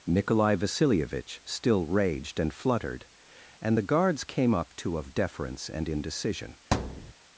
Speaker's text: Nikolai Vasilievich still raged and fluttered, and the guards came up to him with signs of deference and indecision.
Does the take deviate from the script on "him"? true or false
true